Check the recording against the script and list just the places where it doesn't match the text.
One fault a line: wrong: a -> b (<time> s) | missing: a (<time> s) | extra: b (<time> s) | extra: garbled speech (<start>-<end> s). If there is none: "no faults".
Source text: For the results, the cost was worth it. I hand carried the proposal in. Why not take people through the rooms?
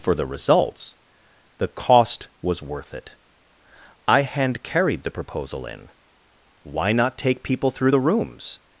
no faults